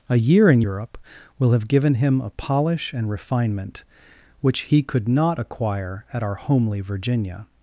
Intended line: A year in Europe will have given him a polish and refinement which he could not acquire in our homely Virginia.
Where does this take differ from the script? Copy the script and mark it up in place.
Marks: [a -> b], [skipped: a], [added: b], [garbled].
A year in Europe will have given him a polish and refinement which he could not acquire [in -> at] our homely Virginia.